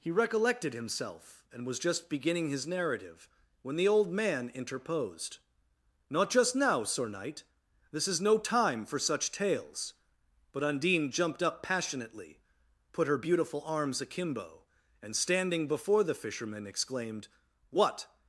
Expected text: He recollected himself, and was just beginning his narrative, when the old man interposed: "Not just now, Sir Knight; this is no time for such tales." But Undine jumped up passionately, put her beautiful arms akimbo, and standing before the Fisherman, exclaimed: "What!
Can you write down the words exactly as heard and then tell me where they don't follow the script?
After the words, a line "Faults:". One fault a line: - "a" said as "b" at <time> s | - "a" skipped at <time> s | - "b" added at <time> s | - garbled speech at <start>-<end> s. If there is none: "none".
He recollected himself, and was just beginning his narrative, when the old man interposed: "Not just now, Sir Knight; this is no time for such tales." But Undine jumped up passionately, put her beautiful arms akimbo, and standing before the Fisherman, exclaimed: "What!
Faults:
none